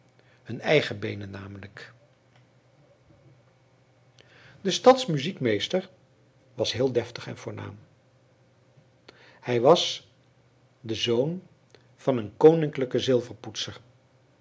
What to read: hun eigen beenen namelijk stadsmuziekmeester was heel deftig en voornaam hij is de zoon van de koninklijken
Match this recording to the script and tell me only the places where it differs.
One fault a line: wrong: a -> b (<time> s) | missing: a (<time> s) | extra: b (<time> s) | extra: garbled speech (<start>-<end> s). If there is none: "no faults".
extra: de (4.6 s)
wrong: is -> was (9.6 s)
wrong: de -> een (12.2 s)